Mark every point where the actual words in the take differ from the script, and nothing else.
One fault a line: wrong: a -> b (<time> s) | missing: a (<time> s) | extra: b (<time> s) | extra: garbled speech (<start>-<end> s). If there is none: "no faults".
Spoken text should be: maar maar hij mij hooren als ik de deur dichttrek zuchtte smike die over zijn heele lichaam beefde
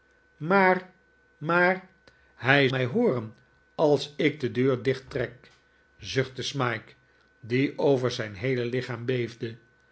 no faults